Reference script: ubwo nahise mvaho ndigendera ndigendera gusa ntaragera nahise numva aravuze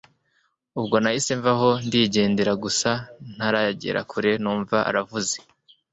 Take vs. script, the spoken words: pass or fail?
fail